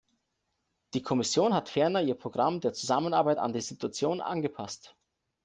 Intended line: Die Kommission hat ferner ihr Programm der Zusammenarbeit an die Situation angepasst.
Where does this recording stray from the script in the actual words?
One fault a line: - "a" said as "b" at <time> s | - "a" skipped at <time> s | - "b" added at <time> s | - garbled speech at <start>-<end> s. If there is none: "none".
none